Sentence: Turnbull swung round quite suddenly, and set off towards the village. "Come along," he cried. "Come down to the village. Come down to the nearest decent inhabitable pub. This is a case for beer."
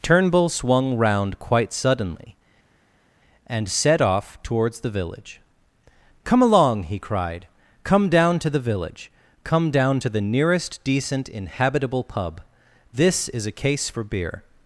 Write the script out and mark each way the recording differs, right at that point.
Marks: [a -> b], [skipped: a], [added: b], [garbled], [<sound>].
Turnbull swung round quite suddenly, and set off towards the village. "Come along," he cried. "Come down to the village. Come down to the nearest decent inhabitable pub. This is a case for beer."